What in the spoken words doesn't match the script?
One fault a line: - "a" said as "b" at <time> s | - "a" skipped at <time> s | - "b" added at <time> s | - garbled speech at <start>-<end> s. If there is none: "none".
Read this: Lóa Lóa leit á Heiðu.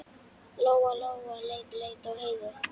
- "leit" added at 1.8 s